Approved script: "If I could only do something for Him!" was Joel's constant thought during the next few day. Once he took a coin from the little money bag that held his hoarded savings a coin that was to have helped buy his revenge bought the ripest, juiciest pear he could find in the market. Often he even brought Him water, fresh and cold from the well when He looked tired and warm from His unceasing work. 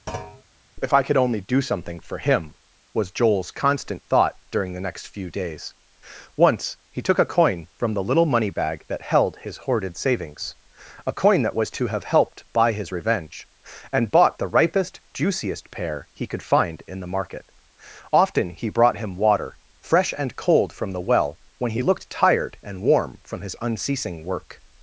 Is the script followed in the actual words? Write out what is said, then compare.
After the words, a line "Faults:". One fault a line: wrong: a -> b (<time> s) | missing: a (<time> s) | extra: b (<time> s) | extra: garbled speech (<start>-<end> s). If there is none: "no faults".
"If I could only do something for Him!" was Joel's constant thought during the next few days. Once he took a coin from the little money bag that held his hoarded savings a coin that was to have helped buy his revenge and bought the ripest, juiciest pear he could find in the market. Often he brought Him water, fresh and cold from the well when He looked tired and warm from His unceasing work.
Faults:
wrong: day -> days (5.3 s)
extra: and (13.9 s)
missing: even (18.7 s)